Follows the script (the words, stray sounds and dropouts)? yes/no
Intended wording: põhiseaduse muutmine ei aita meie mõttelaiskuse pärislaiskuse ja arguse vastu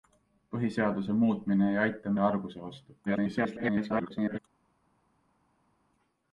no